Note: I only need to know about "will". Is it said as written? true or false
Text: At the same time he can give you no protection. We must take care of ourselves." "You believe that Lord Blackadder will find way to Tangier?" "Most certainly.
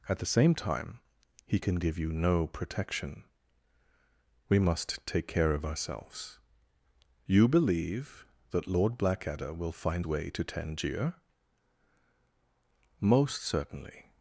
true